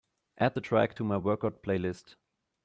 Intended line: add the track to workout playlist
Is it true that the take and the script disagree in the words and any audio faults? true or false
true